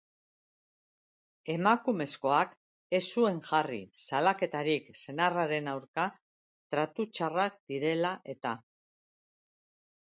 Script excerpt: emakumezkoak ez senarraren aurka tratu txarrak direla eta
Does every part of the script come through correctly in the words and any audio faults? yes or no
no